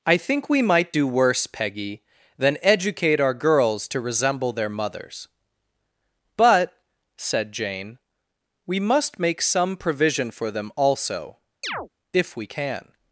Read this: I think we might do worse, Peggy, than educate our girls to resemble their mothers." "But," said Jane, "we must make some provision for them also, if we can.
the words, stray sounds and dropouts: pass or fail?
fail